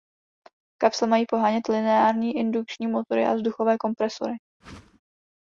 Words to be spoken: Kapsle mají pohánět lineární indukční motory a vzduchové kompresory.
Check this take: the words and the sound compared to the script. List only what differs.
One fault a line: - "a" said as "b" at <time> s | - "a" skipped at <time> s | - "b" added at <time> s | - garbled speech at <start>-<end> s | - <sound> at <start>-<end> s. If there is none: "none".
- whoosh at 4.6-5.0 s